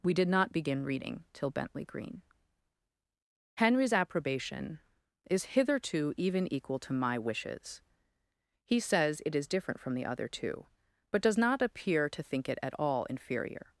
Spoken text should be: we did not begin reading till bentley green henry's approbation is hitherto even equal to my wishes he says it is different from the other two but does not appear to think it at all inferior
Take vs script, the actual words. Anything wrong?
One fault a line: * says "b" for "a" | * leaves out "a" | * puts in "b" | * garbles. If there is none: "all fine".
all fine